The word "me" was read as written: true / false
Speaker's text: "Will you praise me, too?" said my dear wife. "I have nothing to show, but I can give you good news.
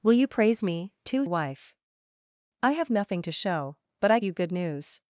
true